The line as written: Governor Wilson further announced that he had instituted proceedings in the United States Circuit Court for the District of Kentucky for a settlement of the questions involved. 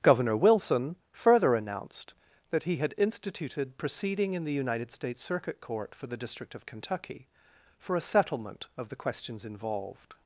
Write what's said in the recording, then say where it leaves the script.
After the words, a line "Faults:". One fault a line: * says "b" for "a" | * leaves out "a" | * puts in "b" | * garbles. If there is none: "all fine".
Governor Wilson further announced that he had instituted proceeding in the United States Circuit Court for the District of Kentucky for a settlement of the questions involved.
Faults:
* says "proceeding" for "proceedings"